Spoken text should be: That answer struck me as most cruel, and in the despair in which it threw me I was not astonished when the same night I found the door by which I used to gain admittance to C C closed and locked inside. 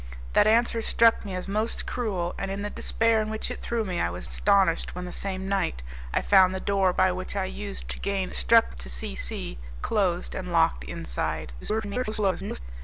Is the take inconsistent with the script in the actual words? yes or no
yes